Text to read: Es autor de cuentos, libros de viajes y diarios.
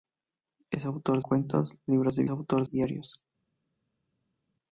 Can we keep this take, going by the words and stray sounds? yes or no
no